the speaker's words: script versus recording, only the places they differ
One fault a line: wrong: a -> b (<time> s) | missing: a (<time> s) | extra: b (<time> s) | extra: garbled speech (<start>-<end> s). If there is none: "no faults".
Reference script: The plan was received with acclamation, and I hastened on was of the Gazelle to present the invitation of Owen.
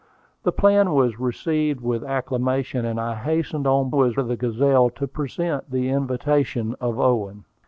no faults